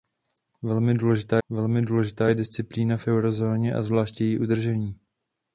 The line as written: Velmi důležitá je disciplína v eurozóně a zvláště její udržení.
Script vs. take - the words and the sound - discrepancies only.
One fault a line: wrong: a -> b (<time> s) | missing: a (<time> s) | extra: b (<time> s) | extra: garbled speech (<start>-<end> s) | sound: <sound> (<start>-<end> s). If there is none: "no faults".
extra: velmi důležitá (1.5 s)